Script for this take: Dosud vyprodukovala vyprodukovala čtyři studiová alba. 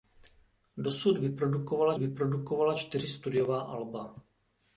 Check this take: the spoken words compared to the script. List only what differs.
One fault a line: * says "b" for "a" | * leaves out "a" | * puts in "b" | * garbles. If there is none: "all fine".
all fine